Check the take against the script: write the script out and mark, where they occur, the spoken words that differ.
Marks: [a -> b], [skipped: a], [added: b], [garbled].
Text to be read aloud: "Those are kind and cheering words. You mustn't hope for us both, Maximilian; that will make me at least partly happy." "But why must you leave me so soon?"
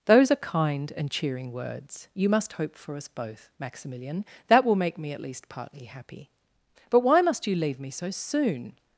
"Those are kind and cheering words. You [mustn't -> must] hope for us both, Maximilian; that will make me at least partly happy." "But why must you leave me so soon?"